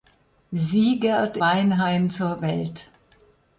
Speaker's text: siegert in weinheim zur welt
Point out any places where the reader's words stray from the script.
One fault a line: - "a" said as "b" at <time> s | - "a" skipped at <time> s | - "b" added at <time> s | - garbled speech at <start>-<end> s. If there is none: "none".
- "in" skipped at 1.4 s